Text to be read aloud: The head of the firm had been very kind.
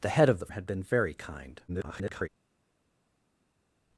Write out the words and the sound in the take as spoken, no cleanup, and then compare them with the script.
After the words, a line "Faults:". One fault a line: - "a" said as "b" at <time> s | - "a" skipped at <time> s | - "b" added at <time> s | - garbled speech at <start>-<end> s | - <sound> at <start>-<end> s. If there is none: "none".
The head of the had been very kind. [garbled]
Faults:
- "firm" skipped at 0.5 s
- garbled speech at 1.7-2.3 s